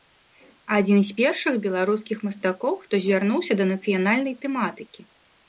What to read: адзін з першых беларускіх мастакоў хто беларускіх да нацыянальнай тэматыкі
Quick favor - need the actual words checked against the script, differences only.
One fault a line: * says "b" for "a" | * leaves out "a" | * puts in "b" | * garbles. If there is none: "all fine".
* says "звярнуўся" for "беларускіх"